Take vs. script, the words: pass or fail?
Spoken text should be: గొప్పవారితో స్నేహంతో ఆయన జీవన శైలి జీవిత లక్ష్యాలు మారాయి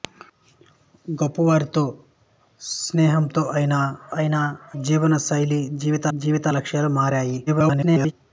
fail